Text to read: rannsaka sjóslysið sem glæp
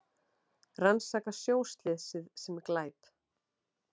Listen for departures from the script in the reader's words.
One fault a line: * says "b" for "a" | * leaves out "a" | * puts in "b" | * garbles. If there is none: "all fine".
all fine